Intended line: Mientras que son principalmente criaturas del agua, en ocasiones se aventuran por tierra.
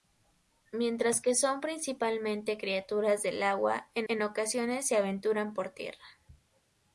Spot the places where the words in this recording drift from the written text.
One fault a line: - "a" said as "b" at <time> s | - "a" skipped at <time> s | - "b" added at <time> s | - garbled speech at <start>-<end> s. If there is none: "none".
- "en" added at 4.1 s